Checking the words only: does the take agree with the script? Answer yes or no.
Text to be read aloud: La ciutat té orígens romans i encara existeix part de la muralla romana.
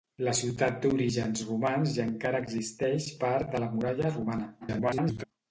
no